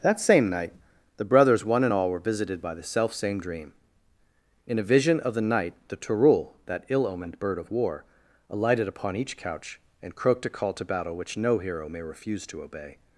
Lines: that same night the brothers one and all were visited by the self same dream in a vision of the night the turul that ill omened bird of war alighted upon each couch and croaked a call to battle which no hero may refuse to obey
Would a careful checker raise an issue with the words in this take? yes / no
no